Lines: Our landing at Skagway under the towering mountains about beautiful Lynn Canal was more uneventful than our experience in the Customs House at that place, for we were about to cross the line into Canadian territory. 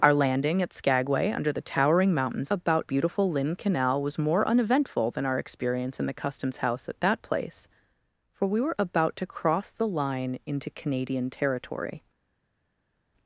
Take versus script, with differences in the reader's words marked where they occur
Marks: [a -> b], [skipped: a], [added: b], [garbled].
Our landing at Skagway under the towering mountains about beautiful Lynn Canal was more uneventful than our experience in the Customs House at that place, for we were about to cross the line into Canadian territory.